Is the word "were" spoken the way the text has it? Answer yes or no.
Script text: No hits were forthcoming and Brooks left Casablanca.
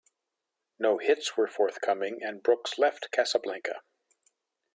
yes